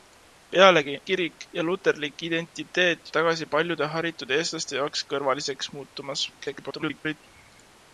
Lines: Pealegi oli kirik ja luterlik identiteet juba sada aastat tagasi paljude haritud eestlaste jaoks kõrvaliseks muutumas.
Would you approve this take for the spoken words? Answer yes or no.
no